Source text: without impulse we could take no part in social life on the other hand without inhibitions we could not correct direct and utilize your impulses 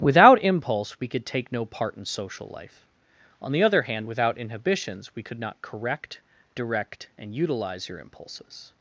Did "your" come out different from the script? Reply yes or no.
no